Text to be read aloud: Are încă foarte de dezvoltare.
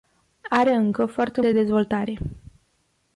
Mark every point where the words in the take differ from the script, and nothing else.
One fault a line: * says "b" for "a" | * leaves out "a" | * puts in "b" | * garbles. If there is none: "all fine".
all fine